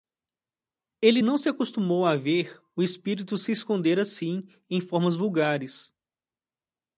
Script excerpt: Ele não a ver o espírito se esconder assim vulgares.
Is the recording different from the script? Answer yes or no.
yes